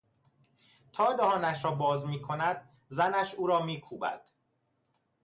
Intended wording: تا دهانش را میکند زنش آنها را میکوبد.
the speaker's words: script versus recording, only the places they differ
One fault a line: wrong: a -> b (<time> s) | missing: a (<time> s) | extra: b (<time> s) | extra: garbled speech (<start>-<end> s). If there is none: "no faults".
extra: باز (1.7 s)
wrong: آنها -> او (3.4 s)